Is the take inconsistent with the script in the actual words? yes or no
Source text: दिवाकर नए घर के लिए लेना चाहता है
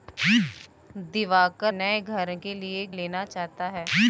no